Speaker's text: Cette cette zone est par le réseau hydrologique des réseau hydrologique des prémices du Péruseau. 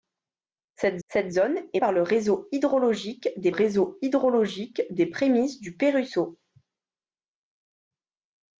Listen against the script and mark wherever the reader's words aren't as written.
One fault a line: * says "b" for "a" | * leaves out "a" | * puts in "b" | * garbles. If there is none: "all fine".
all fine